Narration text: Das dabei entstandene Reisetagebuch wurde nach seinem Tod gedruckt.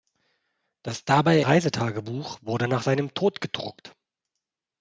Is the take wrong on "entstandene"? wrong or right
wrong